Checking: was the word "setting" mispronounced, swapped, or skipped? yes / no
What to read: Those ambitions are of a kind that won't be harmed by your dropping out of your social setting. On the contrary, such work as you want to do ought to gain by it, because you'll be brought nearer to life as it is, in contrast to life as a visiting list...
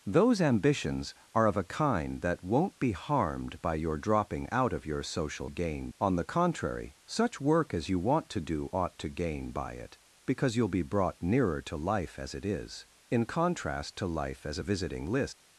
yes